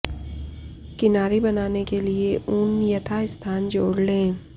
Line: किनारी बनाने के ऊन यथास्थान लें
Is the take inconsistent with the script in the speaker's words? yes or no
yes